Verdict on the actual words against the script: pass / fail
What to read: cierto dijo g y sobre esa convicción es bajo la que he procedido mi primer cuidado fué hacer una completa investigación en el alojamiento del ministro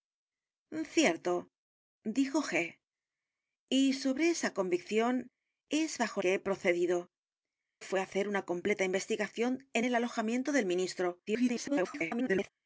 fail